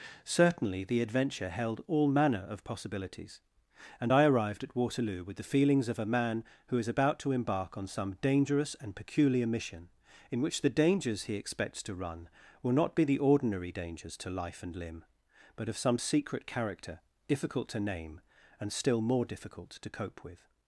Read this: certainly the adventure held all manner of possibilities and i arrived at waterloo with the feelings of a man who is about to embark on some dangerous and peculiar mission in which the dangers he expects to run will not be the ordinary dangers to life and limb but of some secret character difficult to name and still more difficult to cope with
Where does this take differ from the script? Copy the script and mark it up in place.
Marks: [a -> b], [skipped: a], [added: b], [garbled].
certainly the adventure held all manner of possibilities and i arrived at waterloo with the feelings of a man who is about to embark on some dangerous and peculiar mission in which the dangers he expects to run will not be the ordinary dangers to life and limb but of some secret character difficult to name and still more difficult to cope with